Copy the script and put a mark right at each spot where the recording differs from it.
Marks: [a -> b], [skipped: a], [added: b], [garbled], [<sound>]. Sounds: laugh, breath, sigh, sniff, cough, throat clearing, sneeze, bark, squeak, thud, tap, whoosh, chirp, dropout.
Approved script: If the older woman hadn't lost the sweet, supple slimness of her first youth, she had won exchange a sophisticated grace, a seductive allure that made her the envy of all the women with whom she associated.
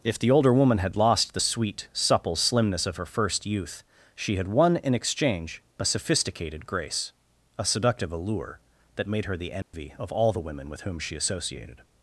If the older woman [hadn't -> had] lost the sweet, supple slimness of her first youth, she had won [added: in] exchange a sophisticated grace, a seductive allure that made her the envy [dropout] of all the women with whom she associated.